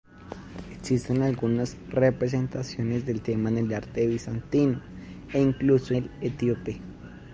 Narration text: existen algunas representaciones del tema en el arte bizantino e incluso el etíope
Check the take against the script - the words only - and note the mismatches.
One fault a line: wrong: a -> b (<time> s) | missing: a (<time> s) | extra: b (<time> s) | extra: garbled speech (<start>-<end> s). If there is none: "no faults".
no faults